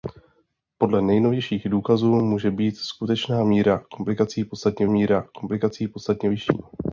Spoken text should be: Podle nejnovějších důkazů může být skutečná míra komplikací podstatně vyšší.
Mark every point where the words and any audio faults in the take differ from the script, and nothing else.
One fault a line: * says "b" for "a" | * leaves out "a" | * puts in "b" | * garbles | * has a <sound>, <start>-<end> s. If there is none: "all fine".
* puts in "míra komplikací podstatně"